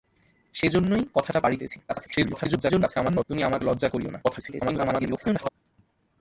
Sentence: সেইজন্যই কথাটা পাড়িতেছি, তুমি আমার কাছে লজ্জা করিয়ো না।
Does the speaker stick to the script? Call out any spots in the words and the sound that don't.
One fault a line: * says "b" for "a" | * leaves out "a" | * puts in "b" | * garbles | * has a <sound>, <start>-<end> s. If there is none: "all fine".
* garbles
* leaves out "কাছে"
* garbles